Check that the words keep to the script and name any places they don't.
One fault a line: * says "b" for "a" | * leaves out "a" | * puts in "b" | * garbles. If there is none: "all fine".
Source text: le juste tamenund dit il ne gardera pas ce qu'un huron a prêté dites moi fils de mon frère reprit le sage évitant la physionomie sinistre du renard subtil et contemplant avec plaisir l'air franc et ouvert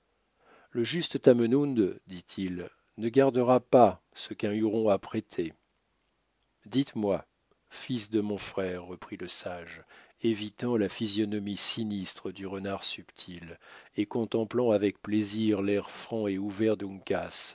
all fine